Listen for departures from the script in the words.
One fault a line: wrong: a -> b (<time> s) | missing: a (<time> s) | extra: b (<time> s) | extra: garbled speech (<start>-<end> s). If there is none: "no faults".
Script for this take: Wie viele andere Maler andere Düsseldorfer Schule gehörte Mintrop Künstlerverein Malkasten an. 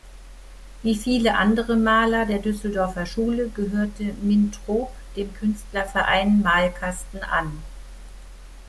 wrong: andere -> der (2.2 s)
extra: dem (5.1 s)